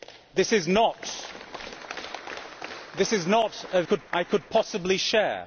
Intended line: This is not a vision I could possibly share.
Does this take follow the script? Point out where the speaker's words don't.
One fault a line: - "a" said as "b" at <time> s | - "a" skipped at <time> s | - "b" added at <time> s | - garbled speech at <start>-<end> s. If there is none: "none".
- "vision" said as "could" at 3.8 s